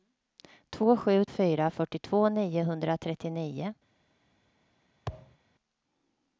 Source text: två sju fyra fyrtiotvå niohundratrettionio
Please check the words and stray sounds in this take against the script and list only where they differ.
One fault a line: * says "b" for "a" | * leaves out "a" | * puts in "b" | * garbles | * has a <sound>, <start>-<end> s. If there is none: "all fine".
* has a thud, 5.1-5.4 s